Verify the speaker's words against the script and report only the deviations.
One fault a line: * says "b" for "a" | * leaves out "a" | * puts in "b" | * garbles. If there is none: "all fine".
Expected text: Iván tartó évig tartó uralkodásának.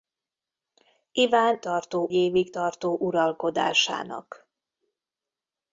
all fine